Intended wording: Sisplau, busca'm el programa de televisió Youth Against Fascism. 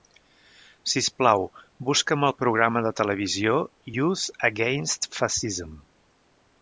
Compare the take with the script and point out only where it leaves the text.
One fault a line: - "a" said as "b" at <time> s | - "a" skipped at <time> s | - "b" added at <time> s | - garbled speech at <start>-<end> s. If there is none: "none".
none